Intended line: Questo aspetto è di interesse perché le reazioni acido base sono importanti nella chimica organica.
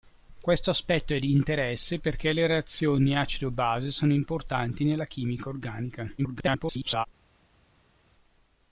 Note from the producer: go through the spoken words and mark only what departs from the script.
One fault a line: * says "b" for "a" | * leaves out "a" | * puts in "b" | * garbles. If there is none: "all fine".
* garbles